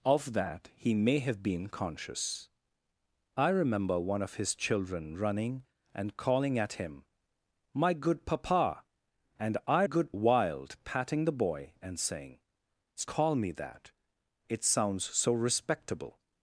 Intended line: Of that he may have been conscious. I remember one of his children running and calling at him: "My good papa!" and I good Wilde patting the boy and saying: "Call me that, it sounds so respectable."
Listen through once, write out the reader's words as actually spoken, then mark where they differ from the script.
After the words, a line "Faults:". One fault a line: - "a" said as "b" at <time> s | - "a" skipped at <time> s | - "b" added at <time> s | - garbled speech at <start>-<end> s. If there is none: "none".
Of that he may have been conscious. I remember one of his children running and calling at him: "My good papa!" and I good Wilde patting the boy and saying: "Call me that, it sounds so respectable."
Faults:
none